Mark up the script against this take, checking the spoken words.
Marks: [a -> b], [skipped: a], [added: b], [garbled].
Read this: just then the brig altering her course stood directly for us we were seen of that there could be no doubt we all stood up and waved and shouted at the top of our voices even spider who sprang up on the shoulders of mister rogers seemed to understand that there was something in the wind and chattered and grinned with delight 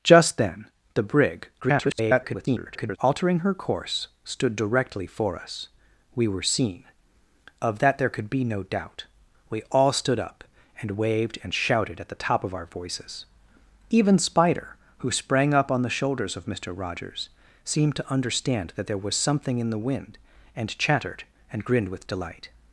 just then the brig [garbled] altering her course stood directly for us we were seen of that there could be no doubt we all stood up and waved and shouted at the top of our voices even spider who sprang up on the shoulders of mister rogers seemed to understand that there was something in the wind and chattered and grinned with delight